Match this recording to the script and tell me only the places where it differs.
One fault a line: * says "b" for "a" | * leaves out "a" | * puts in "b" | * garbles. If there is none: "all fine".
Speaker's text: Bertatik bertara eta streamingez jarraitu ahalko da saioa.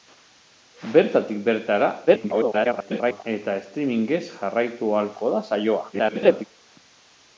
* garbles
* garbles